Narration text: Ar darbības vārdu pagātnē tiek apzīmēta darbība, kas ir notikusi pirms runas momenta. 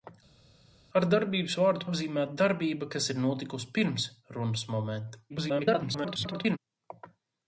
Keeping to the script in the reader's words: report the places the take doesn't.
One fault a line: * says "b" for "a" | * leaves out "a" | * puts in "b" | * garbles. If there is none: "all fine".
* leaves out "pagātnē tiek"
* garbles